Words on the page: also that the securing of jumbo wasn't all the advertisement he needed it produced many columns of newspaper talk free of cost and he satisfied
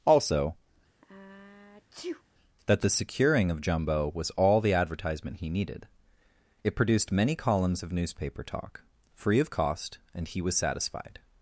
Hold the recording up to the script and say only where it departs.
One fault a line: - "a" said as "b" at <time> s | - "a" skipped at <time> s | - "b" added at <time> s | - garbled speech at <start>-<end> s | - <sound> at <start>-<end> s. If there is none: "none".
- sneeze at 1.0-2.2 s
- "wasn't" said as "was" at 4.1 s
- "was" added at 10.4 s